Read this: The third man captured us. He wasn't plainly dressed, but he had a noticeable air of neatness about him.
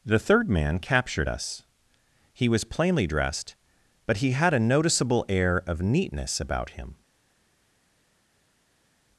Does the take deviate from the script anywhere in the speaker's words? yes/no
yes